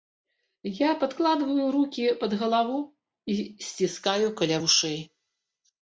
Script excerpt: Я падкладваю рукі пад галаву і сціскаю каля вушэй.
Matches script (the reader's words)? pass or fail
pass